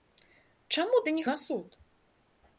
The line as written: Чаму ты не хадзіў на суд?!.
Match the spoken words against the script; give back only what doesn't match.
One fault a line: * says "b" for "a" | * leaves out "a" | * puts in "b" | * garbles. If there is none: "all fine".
* leaves out "хадзіў"